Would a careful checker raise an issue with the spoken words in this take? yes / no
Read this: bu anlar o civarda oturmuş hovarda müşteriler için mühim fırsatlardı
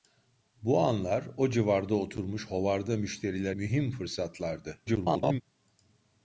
yes